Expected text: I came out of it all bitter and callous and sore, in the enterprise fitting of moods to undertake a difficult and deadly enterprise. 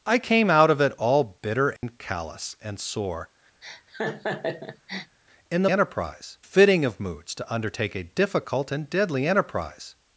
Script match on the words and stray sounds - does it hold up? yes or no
no